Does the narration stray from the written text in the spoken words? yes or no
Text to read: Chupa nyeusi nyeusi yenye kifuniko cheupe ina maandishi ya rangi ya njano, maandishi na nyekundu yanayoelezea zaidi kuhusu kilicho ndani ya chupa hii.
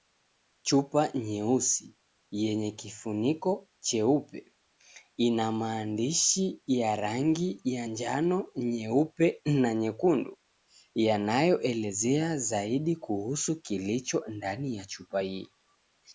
yes